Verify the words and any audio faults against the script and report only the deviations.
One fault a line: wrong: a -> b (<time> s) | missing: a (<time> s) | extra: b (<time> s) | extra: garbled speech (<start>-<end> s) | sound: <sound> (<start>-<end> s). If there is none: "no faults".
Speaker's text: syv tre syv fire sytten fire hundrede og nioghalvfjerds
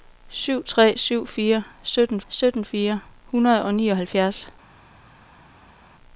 extra: sytten (2.3 s)